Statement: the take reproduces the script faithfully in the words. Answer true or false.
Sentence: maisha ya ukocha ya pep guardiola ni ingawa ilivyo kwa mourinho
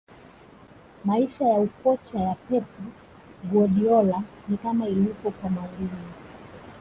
false